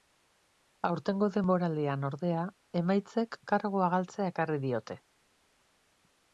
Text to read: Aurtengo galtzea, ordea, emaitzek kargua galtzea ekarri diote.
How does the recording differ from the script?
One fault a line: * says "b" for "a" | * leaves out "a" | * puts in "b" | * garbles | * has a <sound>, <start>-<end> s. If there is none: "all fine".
* says "denboraldian" for "galtzea"